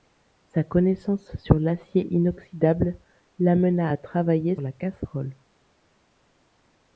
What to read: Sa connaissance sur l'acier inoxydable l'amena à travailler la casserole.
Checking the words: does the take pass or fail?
pass